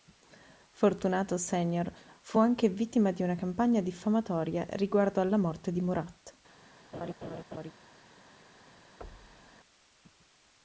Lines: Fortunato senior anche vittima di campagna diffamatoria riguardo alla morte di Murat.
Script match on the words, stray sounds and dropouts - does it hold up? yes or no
no